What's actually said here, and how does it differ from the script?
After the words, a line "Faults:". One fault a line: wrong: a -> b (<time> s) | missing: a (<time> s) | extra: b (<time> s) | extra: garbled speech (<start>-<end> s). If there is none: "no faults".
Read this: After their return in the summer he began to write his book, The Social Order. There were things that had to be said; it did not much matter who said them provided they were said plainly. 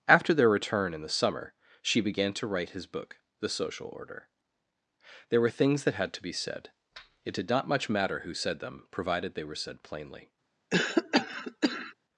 After their return in the summer she began to write his book, The Social Order. There were things that had to be said; it did not much matter who said them provided they were said plainly.
Faults:
wrong: he -> she (1.8 s)